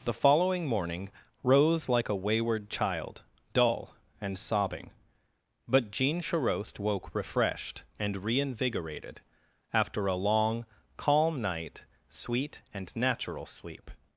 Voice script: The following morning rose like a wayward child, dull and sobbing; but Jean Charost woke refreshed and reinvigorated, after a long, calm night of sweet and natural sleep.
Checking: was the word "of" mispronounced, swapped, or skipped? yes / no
yes